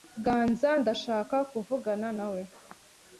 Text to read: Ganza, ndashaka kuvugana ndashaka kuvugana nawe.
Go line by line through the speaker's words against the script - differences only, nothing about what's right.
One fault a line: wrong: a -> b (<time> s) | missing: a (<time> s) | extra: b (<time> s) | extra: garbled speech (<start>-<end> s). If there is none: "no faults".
missing: ndashaka kuvugana (2.1 s)